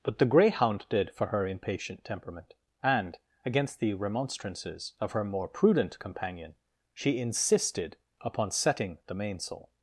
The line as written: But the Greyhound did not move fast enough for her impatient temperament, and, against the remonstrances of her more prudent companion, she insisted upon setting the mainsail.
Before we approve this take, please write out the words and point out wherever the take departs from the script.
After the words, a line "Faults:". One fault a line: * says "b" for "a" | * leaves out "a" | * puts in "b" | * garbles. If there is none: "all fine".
But the Greyhound did for her impatient temperament, and, against the remonstrances of her more prudent companion, she insisted upon setting the mainsail.
Faults:
* leaves out "not move fast enough"